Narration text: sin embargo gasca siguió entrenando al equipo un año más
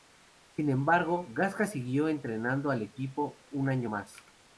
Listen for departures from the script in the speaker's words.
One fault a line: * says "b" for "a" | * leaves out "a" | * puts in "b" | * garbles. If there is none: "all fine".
all fine